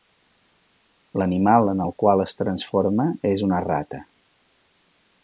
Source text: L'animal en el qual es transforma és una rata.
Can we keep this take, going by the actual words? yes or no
yes